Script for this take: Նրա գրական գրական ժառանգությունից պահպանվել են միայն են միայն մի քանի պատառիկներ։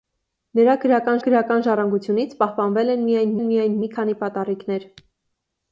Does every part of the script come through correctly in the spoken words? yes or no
yes